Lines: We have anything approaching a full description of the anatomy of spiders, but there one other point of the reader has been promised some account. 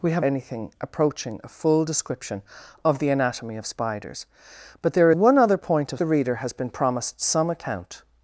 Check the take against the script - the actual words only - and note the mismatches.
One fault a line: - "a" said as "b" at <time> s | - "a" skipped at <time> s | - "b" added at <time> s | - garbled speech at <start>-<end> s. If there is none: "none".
none